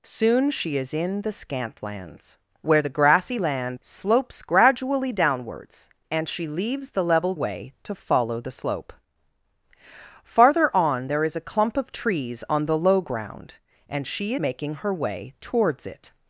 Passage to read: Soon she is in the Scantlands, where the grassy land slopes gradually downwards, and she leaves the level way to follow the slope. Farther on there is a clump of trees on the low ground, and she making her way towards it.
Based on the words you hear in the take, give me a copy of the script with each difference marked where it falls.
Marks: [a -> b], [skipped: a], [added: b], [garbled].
Soon she is in the Scantlands, where the grassy land slopes gradually downwards, and she leaves the level way to follow the slope. Farther on there is a clump of trees on the low ground, and she making her way towards it.